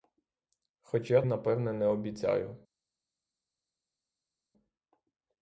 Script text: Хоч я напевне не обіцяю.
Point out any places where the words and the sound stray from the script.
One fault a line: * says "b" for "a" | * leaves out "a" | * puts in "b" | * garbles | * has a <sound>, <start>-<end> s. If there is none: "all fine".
all fine